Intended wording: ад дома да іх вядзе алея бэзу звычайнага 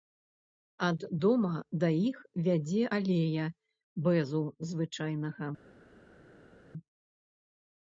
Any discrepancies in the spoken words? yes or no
no